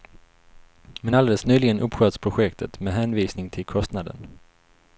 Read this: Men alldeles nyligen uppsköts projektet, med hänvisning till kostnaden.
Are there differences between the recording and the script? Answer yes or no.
no